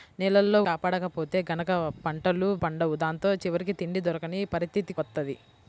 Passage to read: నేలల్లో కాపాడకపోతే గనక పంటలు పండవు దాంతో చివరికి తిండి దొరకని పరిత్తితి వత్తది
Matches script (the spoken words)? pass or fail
pass